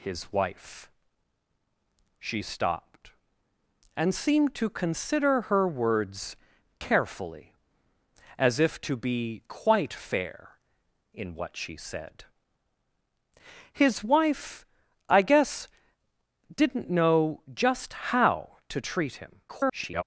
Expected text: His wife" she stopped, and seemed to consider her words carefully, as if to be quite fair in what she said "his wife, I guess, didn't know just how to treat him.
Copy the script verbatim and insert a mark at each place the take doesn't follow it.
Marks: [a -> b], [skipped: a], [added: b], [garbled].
His wife" she stopped, and seemed to consider her words carefully, as if to be quite fair in what she said "his wife, I guess, didn't know just how to treat him. [garbled]